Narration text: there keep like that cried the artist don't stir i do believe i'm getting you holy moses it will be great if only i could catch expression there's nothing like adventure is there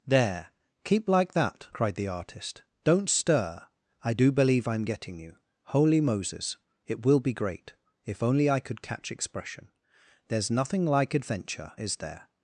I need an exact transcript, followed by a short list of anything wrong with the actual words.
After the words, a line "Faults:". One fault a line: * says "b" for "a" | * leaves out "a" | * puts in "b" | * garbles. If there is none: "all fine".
there keep like that cried the artist don't stir i do believe i'm getting you holy moses it will be great if only i could catch expression there's nothing like adventure is there
Faults:
all fine